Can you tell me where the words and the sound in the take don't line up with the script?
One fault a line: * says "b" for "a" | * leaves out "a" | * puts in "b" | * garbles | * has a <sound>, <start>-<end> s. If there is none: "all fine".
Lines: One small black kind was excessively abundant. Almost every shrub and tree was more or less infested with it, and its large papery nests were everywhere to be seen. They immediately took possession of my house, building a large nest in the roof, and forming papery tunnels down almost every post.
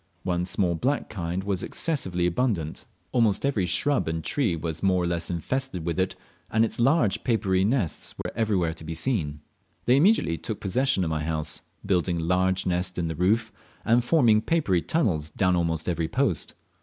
* has a dropout, 8.2-8.3 s